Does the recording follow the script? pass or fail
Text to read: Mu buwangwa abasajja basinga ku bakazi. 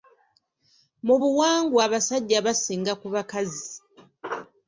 pass